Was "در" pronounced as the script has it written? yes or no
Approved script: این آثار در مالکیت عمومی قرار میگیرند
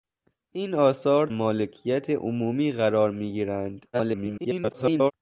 no